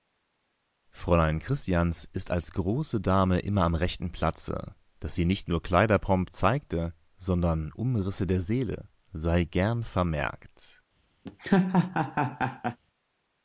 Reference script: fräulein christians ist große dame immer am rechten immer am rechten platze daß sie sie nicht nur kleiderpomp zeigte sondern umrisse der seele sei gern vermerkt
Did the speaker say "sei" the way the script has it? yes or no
yes